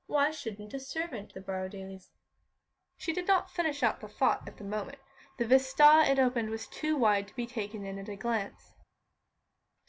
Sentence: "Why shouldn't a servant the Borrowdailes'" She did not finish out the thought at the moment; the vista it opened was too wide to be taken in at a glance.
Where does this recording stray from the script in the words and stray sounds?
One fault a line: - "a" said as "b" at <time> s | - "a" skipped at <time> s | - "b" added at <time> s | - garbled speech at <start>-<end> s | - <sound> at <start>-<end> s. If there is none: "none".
none